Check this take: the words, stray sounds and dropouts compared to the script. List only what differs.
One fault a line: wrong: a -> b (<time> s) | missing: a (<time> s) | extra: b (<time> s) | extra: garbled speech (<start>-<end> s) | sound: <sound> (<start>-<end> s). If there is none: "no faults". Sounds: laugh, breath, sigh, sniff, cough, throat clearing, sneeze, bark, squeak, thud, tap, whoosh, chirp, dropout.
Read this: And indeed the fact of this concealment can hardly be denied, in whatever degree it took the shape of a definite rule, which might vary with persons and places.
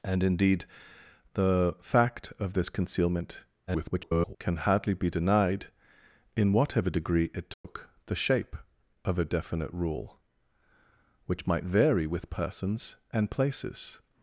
extra: garbled speech (3.7-4.4 s)
sound: dropout (7.5-7.6 s)